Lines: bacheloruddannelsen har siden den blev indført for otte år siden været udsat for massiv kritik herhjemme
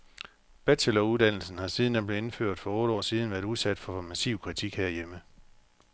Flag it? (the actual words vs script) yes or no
no